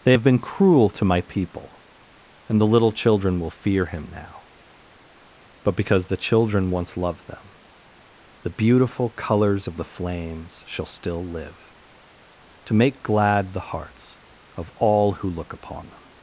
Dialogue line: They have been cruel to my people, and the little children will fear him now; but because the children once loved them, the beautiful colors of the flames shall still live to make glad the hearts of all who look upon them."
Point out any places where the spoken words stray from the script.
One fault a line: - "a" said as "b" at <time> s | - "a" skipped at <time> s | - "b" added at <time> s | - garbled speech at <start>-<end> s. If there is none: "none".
none